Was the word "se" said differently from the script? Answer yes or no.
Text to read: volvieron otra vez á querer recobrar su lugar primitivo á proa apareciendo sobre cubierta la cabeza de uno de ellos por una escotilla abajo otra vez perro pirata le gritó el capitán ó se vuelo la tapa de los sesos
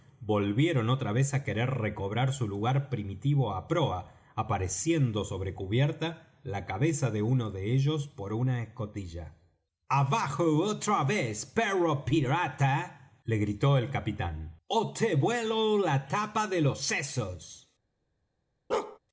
yes